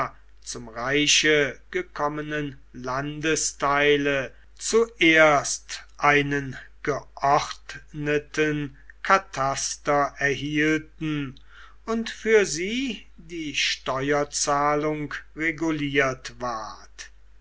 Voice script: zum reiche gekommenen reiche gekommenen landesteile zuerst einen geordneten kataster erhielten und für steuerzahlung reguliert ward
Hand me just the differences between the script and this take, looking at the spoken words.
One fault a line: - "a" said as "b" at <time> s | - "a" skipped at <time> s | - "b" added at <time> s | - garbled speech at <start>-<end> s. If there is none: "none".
- "reiche gekommenen" skipped at 2.6 s
- "sie die" added at 12.5 s